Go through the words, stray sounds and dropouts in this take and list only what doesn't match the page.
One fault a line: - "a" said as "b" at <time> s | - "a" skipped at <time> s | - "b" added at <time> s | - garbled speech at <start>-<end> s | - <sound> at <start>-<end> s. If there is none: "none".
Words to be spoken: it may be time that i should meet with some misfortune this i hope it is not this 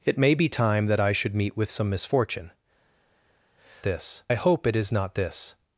none